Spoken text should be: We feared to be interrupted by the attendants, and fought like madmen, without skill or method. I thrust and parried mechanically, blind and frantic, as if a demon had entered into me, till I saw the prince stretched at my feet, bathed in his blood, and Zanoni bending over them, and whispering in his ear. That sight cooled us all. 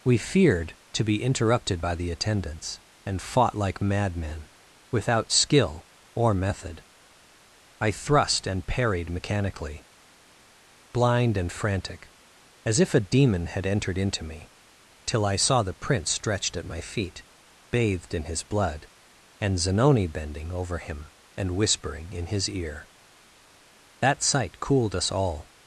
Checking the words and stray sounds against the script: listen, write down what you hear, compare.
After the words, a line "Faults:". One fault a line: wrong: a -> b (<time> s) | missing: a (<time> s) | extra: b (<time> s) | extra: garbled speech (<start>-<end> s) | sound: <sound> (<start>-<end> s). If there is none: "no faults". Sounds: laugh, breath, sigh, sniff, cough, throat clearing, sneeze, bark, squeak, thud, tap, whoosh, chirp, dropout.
We feared to be interrupted by the attendants, and fought like madmen, without skill or method. I thrust and parried mechanically, blind and frantic, as if a demon had entered into me, till I saw the prince stretched at my feet, bathed in his blood, and Zanoni bending over him, and whispering in his ear. That sight cooled us all.
Faults:
wrong: them -> him (20.8 s)